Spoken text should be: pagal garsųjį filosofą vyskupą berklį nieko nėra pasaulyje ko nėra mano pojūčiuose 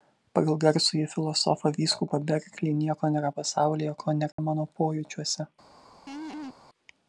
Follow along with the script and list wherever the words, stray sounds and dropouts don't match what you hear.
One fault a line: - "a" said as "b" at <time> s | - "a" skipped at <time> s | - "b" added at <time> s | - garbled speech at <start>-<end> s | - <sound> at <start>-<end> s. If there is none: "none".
- dropout at 4.3-4.4 s
- laugh at 6.1-6.5 s